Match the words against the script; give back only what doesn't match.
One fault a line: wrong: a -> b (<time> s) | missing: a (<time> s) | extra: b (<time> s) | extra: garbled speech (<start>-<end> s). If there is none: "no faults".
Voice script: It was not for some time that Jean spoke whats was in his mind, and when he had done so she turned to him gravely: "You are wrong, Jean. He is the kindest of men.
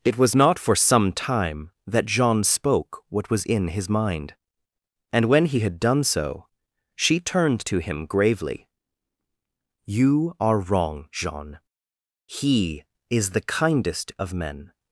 wrong: whats -> what (3.1 s)